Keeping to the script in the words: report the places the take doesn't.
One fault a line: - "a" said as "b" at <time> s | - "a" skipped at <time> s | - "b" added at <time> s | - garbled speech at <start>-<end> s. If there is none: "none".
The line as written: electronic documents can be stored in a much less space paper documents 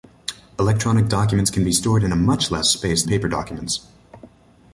none